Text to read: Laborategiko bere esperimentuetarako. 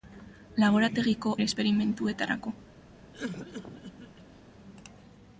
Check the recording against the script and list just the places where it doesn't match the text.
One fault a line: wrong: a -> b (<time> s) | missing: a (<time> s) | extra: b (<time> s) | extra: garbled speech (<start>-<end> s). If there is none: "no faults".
no faults